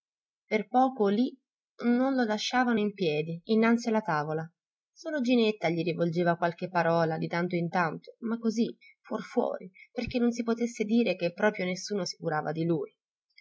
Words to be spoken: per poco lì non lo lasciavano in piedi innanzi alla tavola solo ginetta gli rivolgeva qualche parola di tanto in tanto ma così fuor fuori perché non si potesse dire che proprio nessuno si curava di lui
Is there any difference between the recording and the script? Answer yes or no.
no